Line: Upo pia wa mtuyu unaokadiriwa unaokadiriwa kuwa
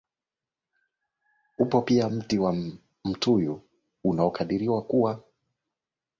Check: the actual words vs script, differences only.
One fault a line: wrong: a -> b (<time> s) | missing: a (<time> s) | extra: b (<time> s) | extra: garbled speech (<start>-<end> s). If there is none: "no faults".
extra: mti (2.1 s)
missing: unaokadiriwa (4.8 s)